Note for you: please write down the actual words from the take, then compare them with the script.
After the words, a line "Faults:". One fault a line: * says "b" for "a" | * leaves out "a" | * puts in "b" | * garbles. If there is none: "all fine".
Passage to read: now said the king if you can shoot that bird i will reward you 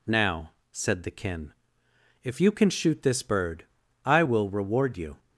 now said the kin if you can shoot this bird i will reward you
Faults:
* says "kin" for "king"
* says "this" for "that"